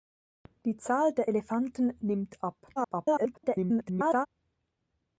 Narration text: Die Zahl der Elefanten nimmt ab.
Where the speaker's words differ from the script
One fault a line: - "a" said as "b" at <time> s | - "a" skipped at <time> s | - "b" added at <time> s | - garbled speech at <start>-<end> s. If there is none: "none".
- garbled speech at 2.8-4.3 s